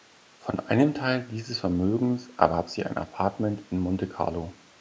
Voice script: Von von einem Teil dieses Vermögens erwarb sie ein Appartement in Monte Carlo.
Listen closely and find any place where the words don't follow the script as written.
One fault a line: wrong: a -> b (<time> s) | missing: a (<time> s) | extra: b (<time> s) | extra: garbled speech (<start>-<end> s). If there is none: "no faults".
missing: von (0.6 s)